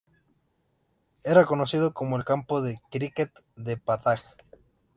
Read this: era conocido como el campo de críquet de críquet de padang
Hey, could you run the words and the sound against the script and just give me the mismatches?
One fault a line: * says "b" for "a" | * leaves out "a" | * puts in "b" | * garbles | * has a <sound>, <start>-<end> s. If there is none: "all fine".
* leaves out "críquet de"